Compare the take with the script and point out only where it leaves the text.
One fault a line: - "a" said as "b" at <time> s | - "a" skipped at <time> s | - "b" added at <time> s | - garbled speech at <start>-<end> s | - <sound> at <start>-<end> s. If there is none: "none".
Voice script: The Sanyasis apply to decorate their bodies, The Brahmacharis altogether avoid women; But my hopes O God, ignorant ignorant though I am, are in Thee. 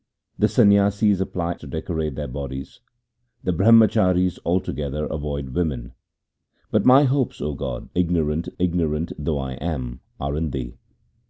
none